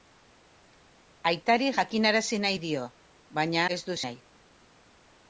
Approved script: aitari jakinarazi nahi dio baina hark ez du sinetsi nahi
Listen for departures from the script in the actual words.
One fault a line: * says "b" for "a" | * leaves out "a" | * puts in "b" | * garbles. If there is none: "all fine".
* leaves out "hark"
* leaves out "sinetsi"